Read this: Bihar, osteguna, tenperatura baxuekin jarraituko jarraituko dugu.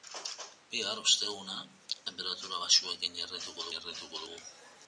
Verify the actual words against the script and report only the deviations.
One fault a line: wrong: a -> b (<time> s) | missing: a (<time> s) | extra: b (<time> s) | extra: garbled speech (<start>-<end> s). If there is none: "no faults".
no faults